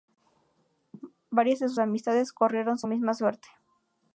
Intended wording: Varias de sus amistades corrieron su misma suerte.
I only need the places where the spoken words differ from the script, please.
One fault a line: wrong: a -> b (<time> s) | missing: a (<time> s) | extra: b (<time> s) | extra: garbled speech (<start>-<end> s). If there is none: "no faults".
no faults